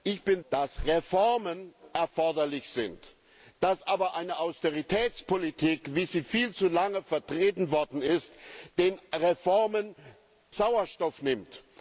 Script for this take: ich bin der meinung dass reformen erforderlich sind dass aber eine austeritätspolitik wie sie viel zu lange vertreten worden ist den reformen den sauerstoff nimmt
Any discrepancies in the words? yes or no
yes